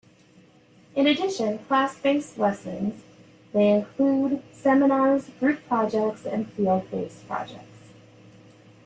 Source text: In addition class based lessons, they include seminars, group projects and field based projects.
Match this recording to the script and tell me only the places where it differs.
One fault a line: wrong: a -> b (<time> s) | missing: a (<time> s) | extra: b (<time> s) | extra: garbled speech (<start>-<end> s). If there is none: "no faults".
no faults